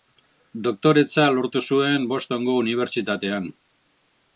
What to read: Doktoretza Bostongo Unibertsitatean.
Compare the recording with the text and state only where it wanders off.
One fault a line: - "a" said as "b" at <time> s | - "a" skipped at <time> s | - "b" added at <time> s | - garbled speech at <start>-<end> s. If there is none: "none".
- "lortu zuen" added at 1.4 s